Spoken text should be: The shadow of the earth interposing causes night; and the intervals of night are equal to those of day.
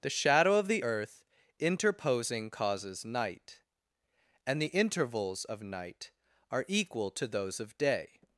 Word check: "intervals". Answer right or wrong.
right